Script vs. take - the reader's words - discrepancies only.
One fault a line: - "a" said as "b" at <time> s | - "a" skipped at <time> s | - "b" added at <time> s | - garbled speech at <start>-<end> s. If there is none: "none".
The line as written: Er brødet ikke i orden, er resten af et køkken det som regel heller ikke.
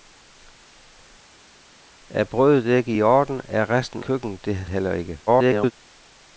- "af et" skipped at 4.0 s
- "som regel" skipped at 4.6 s
- garbled speech at 5.3-5.7 s